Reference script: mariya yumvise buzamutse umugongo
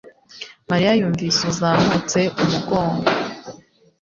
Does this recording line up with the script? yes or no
yes